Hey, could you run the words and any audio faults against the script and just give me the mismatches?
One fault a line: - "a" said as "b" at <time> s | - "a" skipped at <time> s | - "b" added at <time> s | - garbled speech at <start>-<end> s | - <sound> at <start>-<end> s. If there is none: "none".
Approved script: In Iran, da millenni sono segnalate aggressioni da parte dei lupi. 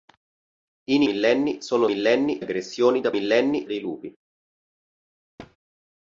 - "Iran da" skipped at 1.0 s
- "segnalate" said as "millenni" at 1.8 s
- "parte" said as "millenni" at 3.1 s
- thud at 5.4-5.6 s